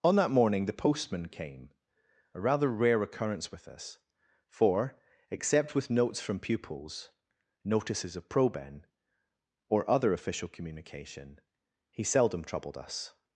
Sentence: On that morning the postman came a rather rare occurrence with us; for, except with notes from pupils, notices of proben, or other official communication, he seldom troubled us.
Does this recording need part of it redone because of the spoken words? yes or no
no